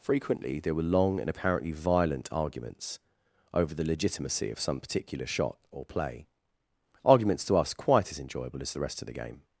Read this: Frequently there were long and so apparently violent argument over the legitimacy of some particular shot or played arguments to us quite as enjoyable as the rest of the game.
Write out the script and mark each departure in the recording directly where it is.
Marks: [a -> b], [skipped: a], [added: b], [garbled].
Frequently there were long and [skipped: so] apparently violent [argument -> arguments] over the legitimacy of some particular shot or [played -> play] arguments to us quite as enjoyable as the rest of the game.